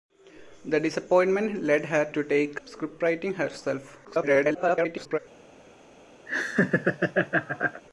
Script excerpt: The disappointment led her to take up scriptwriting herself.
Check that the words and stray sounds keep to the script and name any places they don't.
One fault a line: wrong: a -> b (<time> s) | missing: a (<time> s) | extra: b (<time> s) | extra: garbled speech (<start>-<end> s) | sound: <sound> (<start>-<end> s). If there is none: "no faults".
missing: up (2.6 s)
extra: garbled speech (4.0-5.2 s)
sound: laugh (6.3-7.8 s)